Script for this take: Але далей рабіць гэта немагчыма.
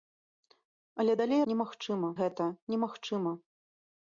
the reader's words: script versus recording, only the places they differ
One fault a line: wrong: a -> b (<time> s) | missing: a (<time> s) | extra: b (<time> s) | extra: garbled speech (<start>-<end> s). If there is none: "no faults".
wrong: рабіць -> немагчыма (1.5 s)